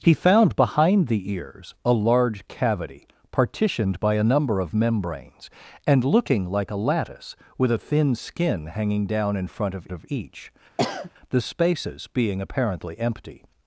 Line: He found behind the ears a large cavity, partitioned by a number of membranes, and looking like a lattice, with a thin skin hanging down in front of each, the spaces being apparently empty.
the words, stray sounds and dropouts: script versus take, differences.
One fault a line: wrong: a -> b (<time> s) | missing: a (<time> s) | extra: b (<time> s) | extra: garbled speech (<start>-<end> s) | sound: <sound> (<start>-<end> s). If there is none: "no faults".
extra: of (9.9 s)
sound: sniff (10.8-11.1 s)